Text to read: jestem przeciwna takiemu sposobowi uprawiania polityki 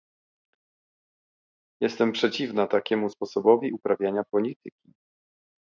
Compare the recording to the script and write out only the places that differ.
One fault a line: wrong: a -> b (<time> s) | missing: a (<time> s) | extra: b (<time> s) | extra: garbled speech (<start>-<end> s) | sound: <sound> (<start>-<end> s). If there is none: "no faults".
no faults